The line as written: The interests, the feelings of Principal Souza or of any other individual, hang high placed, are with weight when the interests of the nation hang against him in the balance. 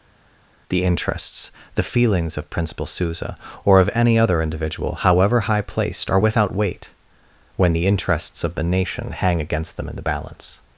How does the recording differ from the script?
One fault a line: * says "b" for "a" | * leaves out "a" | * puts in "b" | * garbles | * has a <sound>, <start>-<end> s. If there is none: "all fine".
* says "however" for "hang"
* says "without" for "with"
* says "them" for "him"